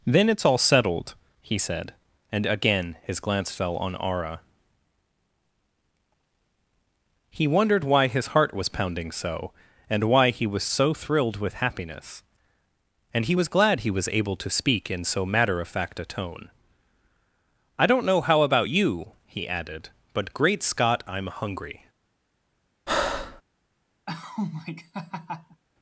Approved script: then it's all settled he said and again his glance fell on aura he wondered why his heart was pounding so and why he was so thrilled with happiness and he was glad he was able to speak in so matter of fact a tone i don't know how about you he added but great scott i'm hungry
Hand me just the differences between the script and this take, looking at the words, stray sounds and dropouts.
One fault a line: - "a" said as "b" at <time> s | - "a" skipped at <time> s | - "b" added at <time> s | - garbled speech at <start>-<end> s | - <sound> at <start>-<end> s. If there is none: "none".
- breath at 22.9-23.4 s
- laugh at 24.1-25.6 s